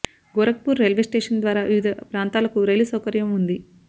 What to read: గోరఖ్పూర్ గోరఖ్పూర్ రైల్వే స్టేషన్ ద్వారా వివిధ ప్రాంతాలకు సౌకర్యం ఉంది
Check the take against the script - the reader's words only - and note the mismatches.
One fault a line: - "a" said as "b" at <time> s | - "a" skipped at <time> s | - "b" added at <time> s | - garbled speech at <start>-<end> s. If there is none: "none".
- "గోరఖ్పూర్" skipped at 0.8 s
- "రైలు" added at 2.7 s